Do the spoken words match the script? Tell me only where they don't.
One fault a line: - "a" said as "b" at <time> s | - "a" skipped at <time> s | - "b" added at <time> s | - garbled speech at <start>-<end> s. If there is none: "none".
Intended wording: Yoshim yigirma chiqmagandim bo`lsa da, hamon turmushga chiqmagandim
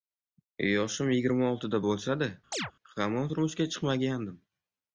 - "chiqmagandim" said as "oltida" at 1.5 s